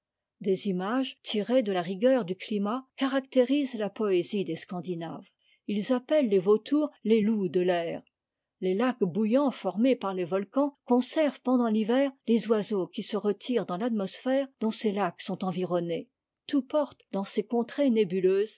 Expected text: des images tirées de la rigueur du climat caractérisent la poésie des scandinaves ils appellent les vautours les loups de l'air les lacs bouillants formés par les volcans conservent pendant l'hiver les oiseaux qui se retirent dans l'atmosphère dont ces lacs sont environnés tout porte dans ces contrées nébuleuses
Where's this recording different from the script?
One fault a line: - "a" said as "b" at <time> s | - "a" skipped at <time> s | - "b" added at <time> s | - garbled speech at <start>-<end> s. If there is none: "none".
none